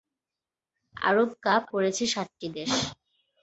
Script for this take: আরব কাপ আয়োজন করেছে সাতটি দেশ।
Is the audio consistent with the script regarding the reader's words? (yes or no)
no